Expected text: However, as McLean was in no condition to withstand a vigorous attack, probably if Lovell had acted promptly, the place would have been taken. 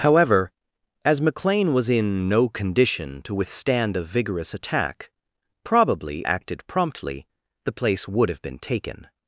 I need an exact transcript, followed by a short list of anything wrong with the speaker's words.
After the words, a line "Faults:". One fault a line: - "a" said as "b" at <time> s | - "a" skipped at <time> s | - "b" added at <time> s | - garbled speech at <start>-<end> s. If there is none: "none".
However, as McLean was in no condition to withstand a vigorous attack, probably acted promptly, the place would have been taken.
Faults:
- "if Lovell had" skipped at 6.2 s